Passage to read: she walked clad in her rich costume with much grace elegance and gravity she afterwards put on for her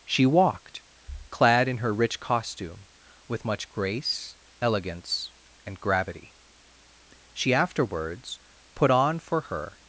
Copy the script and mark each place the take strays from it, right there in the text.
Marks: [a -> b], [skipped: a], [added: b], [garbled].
she walked clad in her rich costume with much grace elegance and gravity she afterwards put on for her